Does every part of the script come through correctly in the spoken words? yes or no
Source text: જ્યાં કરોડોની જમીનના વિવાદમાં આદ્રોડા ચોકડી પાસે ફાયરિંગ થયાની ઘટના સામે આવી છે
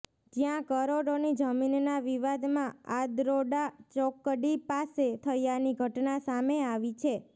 no